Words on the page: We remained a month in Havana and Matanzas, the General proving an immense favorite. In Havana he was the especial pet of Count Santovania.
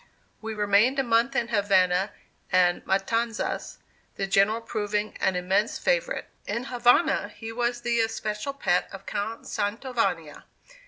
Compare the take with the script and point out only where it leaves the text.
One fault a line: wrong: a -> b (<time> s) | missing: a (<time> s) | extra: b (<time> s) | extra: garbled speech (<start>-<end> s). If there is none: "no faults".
no faults